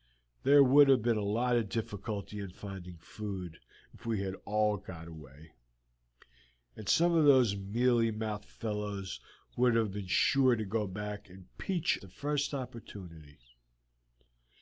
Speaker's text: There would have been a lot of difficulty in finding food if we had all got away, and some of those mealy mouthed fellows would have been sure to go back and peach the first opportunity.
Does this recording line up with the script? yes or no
yes